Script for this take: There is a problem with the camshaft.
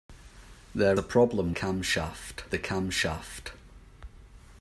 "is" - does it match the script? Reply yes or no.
no